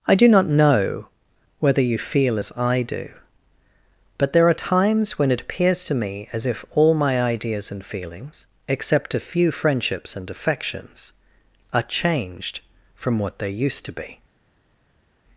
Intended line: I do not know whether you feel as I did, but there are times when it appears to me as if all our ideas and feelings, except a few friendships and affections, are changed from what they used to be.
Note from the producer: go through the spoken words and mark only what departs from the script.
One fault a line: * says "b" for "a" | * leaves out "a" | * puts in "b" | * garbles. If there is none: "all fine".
* says "do" for "did"
* says "my" for "our"